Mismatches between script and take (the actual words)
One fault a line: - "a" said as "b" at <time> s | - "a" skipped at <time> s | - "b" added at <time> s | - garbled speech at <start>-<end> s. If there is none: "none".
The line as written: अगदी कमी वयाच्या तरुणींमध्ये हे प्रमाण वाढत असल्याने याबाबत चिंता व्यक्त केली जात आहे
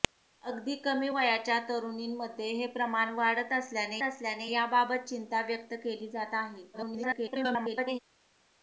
- "असल्याने" added at 4.0 s
- garbled speech at 6.7-8.0 s